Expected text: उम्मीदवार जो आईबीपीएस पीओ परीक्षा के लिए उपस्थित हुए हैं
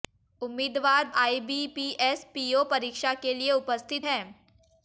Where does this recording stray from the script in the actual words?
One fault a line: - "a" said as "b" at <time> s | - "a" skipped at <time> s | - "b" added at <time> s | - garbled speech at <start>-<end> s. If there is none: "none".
- "जो" skipped at 1.1 s
- "हुए" skipped at 4.1 s